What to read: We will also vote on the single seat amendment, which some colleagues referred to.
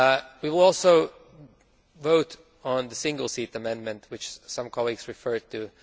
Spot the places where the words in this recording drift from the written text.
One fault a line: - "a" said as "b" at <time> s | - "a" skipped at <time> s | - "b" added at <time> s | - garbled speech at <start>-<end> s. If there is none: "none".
none